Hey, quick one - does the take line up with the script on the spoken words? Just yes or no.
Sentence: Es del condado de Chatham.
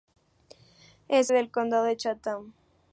yes